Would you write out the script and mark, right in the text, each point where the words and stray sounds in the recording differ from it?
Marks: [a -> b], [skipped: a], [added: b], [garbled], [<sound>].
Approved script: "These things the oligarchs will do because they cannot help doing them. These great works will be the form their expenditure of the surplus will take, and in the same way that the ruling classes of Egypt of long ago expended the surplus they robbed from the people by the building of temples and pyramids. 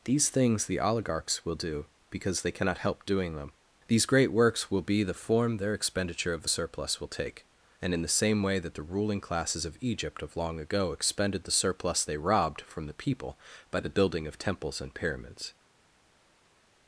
"These things the oligarchs will do because they cannot help doing them. These great works will be the form their expenditure of the surplus will take, and in the same way that the ruling classes of Egypt of long ago expended the surplus they robbed from the people by the building of temples and pyramids.